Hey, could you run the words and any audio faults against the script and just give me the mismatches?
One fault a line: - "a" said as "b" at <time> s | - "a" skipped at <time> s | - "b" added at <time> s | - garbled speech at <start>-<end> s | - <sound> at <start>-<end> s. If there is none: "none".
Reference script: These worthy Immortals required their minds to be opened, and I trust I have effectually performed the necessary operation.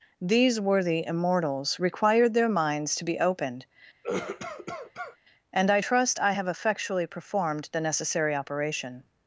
- cough at 4.0-5.2 s